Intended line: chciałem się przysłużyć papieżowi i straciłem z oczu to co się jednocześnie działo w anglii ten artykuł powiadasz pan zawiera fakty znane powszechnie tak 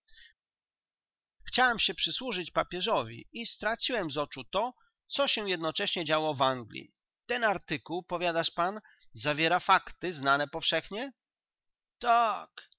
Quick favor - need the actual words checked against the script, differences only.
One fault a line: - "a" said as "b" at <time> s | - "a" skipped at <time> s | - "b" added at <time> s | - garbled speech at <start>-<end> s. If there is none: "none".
none